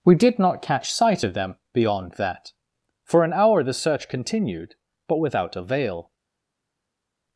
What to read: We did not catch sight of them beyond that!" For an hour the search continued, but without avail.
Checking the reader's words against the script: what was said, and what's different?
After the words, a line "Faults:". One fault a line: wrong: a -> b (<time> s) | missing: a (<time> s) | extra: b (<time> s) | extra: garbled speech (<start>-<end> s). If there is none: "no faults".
We did not catch sight of them beyond that!" For an hour the search continued, but without avail.
Faults:
no faults